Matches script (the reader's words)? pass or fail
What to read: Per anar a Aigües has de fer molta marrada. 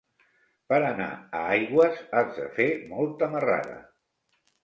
pass